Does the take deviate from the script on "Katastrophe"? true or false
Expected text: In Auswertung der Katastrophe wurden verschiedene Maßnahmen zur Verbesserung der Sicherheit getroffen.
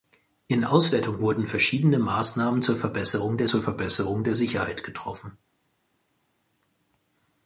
true